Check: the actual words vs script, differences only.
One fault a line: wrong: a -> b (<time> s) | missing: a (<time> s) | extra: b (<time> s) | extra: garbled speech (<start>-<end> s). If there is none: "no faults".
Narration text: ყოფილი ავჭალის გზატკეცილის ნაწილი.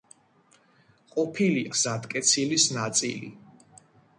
missing: ავჭალის (1.6 s)